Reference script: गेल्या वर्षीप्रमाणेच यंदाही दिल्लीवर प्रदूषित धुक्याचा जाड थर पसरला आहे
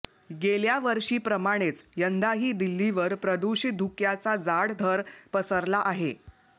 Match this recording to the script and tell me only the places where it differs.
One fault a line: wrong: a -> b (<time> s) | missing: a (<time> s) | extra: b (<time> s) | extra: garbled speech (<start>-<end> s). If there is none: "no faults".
no faults